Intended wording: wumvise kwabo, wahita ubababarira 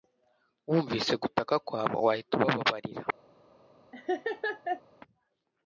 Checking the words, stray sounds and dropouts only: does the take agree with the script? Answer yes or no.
no